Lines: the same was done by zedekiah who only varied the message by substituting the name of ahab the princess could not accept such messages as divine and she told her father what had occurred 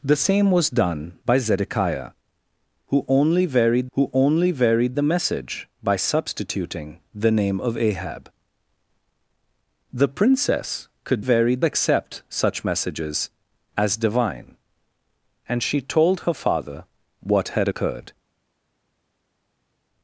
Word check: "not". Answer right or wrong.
wrong